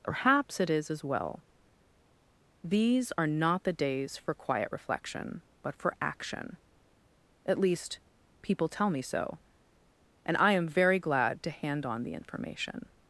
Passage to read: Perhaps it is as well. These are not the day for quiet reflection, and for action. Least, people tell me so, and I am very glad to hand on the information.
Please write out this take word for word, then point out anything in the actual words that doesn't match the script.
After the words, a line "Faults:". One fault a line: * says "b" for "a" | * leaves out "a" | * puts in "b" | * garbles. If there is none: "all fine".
Perhaps it is as well. These are not the days for quiet reflection, but for action. At least, people tell me so, and I am very glad to hand on the information.
Faults:
* says "days" for "day"
* says "but" for "and"
* puts in "At"